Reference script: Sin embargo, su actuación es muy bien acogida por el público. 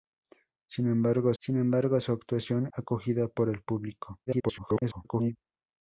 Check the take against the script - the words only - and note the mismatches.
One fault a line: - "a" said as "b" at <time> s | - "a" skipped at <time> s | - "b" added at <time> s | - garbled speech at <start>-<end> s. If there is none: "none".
- "sin embargo" added at 1.4 s
- "es muy bien" skipped at 2.7 s
- garbled speech at 4.3-5.4 s